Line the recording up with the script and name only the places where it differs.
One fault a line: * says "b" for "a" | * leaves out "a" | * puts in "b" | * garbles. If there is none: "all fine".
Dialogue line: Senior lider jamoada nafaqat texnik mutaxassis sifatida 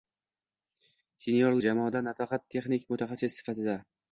* leaves out "lider"